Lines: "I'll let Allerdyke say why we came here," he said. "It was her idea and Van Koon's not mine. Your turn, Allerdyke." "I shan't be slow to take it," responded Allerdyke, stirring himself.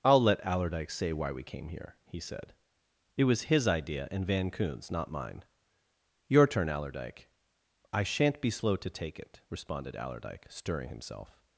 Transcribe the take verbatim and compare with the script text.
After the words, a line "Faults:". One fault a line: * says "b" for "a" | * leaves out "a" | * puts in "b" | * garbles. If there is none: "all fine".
"I'll let Allerdyke say why we came here," he said. "It was his idea and Van Koon's not mine. Your turn, Allerdyke." "I shan't be slow to take it," responded Allerdyke, stirring himself.
Faults:
* says "his" for "her"